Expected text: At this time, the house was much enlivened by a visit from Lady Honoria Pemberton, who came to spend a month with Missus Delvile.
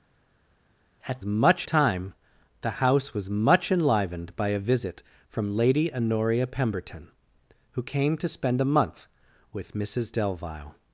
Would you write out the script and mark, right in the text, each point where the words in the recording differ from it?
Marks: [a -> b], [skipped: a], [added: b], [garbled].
At [this -> much] time, the house was much enlivened by a visit from Lady Honoria Pemberton, who came to spend a month with Missus Delvile.